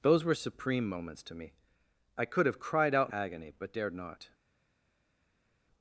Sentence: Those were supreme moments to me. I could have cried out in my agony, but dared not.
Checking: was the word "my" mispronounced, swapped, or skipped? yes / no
yes